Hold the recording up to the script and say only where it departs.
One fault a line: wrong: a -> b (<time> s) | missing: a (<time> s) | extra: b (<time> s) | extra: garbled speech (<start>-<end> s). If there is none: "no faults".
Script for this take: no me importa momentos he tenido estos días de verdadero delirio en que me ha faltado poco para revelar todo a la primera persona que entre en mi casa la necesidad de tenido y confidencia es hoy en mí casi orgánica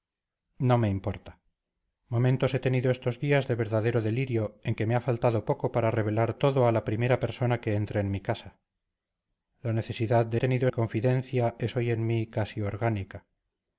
no faults